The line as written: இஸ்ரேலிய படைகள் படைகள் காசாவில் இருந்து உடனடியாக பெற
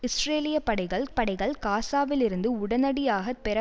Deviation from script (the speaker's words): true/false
false